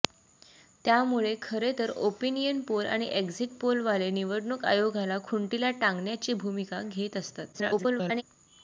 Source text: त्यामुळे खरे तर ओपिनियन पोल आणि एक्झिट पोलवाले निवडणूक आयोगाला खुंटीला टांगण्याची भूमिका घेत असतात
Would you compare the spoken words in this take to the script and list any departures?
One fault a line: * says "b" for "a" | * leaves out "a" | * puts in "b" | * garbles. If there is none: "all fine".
* garbles